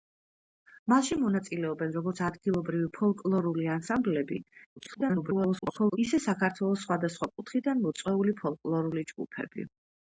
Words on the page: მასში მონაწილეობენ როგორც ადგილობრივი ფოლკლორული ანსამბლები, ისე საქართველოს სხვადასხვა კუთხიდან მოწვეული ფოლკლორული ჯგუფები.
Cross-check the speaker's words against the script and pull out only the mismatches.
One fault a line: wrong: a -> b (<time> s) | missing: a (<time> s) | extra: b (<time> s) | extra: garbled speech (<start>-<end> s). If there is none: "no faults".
extra: garbled speech (4.8-6.0 s)